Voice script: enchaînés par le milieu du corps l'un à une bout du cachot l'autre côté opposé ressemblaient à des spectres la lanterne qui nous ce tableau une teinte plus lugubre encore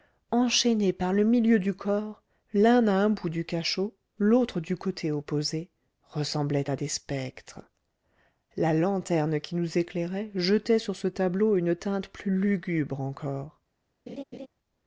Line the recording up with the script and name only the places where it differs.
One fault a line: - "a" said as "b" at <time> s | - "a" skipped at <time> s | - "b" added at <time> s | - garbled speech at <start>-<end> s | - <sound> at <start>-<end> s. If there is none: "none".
- "une" said as "un" at 2.9 s
- "du" added at 4.6 s
- "éclairait jetait sur" added at 9.8 s
- laugh at 14.1-14.5 s